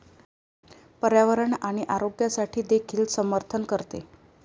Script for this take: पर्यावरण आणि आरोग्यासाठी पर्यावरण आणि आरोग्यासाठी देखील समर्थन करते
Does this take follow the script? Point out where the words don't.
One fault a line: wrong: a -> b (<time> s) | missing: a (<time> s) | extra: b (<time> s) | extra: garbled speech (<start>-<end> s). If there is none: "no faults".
missing: पर्यावरण आणि आरोग्यासाठी (2.6 s)